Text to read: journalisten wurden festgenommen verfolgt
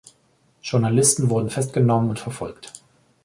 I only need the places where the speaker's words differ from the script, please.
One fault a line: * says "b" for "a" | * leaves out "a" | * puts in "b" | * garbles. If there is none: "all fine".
* puts in "und"